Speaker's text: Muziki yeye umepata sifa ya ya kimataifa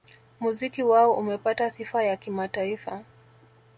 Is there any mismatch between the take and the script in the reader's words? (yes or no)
yes